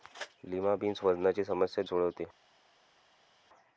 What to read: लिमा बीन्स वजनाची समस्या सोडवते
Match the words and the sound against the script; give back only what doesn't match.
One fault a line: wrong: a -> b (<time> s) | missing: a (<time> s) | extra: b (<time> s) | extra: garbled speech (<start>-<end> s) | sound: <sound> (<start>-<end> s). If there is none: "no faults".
no faults